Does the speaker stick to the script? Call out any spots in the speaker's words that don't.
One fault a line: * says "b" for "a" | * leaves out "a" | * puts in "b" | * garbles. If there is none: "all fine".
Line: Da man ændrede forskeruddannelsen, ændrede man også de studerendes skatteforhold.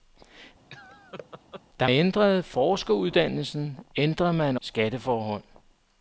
* leaves out "man"
* leaves out "også de studerendes"